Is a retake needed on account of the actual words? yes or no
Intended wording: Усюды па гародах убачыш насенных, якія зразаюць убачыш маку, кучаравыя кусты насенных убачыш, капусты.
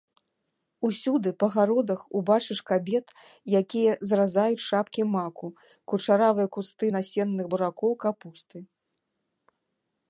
yes